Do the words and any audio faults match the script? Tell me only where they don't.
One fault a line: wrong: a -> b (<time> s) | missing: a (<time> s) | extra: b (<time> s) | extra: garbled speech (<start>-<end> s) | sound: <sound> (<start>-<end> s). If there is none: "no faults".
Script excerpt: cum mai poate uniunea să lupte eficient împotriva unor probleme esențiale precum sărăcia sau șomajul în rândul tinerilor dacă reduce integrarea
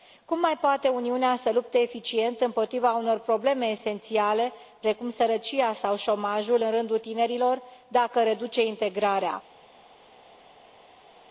no faults